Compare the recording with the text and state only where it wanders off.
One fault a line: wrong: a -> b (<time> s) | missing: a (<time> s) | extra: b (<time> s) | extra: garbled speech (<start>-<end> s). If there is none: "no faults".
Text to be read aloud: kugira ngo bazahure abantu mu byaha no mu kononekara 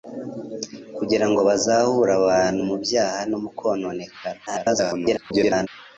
extra: garbled speech (4.5-5.7 s)